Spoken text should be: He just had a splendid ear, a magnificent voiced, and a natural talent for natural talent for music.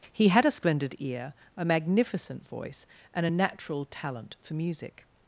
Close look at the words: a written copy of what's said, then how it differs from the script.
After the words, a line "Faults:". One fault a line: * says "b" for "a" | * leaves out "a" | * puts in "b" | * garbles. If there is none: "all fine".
He had a splendid ear, a magnificent voice, and a natural talent for music.
Faults:
* leaves out "just"
* says "voice" for "voiced"
* leaves out "natural talent for"